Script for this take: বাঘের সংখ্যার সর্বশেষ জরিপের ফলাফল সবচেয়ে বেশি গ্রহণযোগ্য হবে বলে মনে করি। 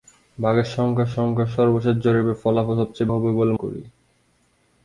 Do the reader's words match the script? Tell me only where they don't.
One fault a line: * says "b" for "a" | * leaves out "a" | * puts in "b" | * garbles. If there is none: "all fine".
* puts in "সংখ্যার"
* leaves out "বেশি গ্রহণযোগ্য"
* leaves out "মনে"